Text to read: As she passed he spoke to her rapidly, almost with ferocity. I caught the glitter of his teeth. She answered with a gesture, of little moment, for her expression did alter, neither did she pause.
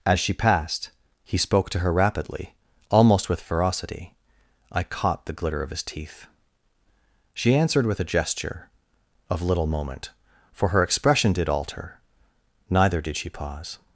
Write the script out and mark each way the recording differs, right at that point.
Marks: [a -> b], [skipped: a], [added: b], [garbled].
As she passed he spoke to her rapidly, almost with ferocity. I caught the glitter of his teeth. She answered with a gesture, of little moment, for her expression did alter, neither did she pause.